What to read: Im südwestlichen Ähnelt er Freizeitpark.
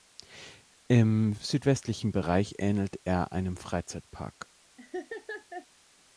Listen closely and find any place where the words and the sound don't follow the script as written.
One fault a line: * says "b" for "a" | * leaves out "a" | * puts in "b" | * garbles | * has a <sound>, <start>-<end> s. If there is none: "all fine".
* puts in "Bereich"
* puts in "einem"
* has a laugh, 4.8-5.7 s